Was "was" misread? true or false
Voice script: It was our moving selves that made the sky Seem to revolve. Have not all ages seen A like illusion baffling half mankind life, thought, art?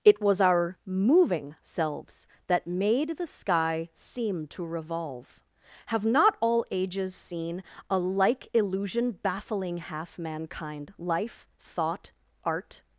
false